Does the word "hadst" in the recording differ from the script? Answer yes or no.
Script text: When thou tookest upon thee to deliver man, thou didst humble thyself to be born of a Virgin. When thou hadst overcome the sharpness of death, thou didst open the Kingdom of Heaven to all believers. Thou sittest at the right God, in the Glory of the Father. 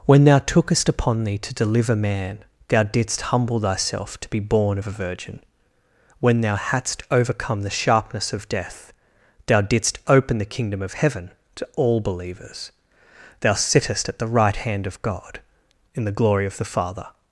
no